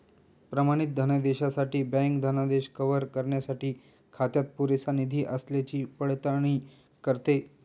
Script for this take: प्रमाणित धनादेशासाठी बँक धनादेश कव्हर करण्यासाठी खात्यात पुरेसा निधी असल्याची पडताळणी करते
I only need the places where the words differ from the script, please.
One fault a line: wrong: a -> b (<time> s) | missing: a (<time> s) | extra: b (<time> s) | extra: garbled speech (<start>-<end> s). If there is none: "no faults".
no faults